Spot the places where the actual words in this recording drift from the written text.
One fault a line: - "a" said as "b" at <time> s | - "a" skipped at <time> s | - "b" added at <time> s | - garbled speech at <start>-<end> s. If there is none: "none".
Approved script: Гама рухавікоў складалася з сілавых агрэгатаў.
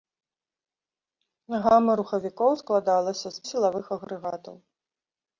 none